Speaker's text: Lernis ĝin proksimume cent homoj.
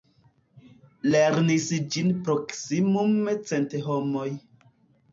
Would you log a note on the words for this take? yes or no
no